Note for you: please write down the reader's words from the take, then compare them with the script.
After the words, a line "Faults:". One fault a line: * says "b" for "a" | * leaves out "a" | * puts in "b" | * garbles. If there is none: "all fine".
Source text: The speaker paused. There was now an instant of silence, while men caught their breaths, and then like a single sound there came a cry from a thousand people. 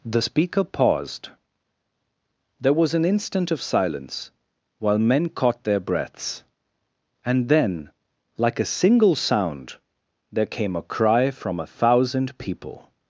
The speaker paused. There was an instant of silence, while men caught their breaths, and then like a single sound there came a cry from a thousand people.
Faults:
* leaves out "now"